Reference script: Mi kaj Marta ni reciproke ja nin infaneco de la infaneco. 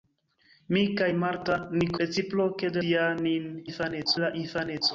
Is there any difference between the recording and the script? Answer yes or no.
no